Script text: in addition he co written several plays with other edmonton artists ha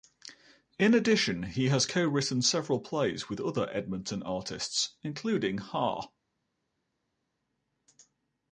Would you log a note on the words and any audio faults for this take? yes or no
yes